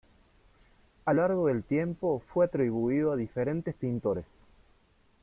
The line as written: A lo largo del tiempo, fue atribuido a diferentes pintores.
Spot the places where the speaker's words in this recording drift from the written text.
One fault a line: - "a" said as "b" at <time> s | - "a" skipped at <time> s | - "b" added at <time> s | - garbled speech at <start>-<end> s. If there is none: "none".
- "lo" skipped at 1.1 s